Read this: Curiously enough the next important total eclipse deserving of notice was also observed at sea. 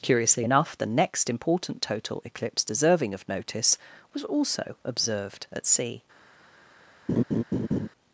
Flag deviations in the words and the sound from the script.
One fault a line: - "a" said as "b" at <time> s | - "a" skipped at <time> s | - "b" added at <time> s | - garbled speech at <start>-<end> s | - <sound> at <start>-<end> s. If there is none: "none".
- laugh at 7.1-7.9 s